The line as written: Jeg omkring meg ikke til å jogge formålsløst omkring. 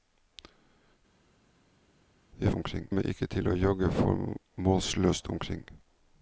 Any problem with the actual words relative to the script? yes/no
no